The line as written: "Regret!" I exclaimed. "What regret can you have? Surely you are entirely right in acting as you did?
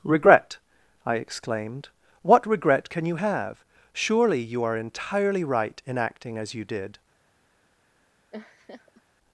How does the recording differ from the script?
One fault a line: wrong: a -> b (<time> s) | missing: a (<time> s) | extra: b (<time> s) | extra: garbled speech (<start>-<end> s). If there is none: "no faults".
no faults